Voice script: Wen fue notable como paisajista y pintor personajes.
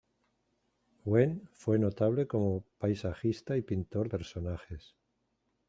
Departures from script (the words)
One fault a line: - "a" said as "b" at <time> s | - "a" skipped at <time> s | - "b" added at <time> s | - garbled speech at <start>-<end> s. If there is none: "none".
none